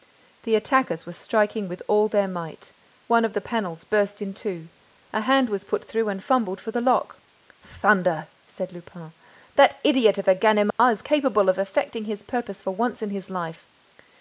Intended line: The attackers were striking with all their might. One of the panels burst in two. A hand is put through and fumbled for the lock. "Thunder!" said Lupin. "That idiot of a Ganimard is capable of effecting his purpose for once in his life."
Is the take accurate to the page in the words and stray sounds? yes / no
no